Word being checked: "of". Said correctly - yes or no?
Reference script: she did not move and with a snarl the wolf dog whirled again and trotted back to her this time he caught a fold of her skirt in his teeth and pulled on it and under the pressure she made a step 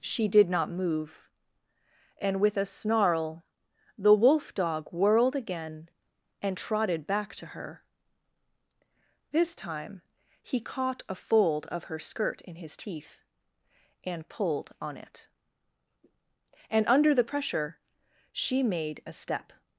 yes